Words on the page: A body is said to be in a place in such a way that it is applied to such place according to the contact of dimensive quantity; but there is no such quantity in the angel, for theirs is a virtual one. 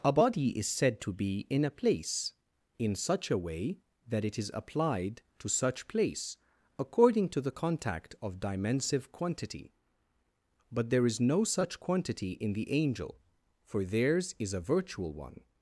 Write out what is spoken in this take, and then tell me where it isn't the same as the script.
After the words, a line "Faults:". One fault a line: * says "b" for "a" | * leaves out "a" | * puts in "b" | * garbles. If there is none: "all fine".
A body is said to be in a place in such a way that it is applied to such place according to the contact of dimensive quantity; but there is no such quantity in the angel, for theirs is a virtual one.
Faults:
all fine